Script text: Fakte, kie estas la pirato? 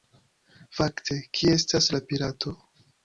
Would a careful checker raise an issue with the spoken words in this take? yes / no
no